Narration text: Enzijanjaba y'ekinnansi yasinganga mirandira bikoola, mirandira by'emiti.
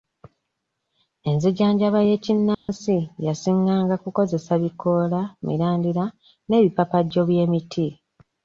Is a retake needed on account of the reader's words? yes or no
yes